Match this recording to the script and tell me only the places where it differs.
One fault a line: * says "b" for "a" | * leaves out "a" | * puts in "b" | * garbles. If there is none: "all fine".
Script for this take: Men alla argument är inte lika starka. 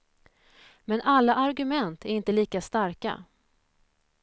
all fine